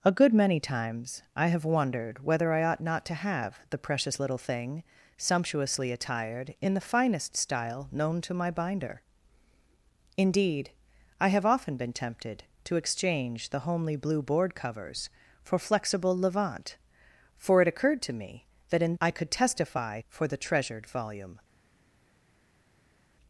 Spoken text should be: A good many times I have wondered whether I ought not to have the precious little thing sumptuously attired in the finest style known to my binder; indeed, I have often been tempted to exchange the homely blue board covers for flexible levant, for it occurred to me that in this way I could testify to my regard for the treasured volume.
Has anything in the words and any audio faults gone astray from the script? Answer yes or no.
yes